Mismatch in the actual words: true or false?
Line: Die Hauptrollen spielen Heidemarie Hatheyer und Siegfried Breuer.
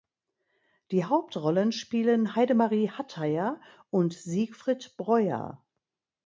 false